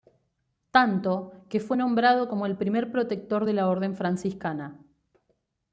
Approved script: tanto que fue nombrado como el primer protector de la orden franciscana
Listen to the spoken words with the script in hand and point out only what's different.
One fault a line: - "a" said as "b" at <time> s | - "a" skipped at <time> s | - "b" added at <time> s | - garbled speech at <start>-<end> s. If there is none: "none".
none